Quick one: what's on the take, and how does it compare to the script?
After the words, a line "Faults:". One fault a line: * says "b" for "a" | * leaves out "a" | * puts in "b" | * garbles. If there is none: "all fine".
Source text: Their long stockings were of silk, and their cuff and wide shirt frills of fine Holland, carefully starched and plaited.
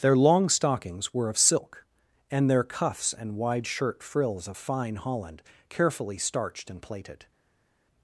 Their long stockings were of silk, and their cuffs and wide shirt frills of fine Holland, carefully starched and plaited.
Faults:
* says "cuffs" for "cuff"